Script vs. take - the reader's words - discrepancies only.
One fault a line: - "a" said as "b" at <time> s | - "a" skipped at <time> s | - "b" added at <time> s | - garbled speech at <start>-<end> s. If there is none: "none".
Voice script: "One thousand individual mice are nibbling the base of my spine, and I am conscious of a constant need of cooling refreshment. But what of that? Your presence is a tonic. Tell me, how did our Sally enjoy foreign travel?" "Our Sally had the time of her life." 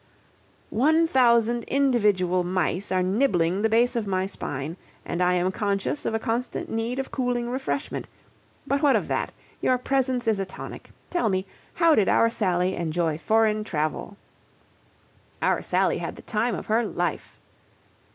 none